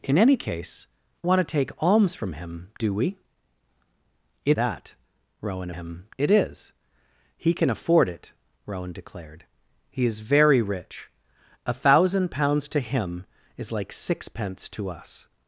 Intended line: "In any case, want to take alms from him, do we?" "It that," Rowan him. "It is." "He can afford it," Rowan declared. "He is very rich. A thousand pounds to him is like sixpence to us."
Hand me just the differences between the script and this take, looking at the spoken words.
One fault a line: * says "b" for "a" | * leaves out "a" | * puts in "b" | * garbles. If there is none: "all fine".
all fine